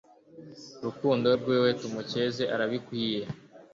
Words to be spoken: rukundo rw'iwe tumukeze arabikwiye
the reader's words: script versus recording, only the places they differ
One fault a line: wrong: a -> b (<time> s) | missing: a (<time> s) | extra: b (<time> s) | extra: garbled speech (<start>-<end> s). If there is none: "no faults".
no faults